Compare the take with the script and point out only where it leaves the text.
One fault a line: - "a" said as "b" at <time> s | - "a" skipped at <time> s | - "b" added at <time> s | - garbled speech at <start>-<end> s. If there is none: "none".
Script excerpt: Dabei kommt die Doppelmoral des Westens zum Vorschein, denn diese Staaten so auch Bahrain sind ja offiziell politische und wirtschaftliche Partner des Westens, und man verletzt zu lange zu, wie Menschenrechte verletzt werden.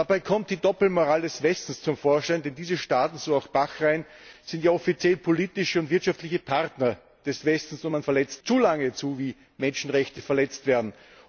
none